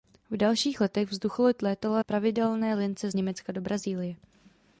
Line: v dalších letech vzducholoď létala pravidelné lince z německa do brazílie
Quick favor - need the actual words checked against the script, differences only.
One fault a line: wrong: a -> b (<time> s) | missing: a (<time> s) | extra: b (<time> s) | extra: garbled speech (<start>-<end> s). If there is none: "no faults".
no faults